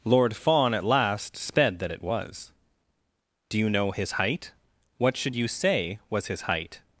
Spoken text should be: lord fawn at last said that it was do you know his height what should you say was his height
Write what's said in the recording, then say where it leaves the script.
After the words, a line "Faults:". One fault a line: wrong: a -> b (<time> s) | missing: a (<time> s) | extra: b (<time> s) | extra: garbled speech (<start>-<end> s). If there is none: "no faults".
lord fawn at last sped that it was do you know his height what should you say was his height
Faults:
wrong: said -> sped (1.4 s)